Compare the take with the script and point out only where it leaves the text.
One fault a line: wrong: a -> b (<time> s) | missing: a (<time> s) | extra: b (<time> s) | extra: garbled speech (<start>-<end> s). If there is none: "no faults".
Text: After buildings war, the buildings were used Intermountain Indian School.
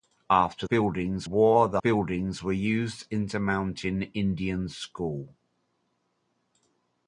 no faults